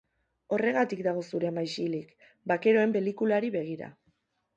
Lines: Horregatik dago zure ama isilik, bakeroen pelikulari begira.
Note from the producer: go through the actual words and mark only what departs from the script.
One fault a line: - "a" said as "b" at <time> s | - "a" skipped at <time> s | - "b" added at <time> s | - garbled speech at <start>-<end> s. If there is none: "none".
none